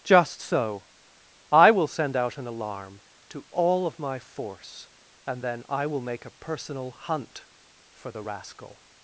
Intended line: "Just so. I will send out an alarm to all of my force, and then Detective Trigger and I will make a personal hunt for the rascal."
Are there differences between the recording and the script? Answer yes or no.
yes